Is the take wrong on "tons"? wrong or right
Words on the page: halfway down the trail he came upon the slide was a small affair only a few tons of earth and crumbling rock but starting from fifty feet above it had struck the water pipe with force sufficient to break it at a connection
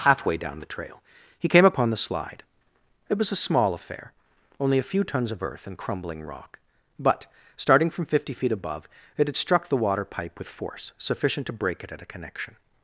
right